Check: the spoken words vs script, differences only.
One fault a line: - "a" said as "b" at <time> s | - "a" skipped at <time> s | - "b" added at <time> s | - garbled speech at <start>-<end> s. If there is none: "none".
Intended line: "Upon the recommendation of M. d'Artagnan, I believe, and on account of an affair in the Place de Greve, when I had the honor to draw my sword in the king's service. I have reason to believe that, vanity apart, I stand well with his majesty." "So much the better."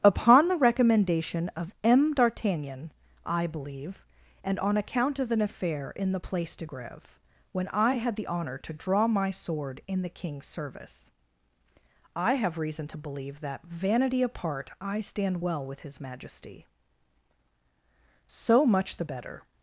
none